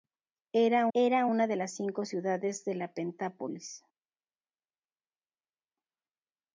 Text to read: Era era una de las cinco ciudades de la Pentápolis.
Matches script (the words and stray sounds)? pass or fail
pass